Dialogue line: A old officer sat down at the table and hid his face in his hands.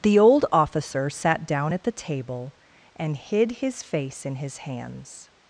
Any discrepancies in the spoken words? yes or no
yes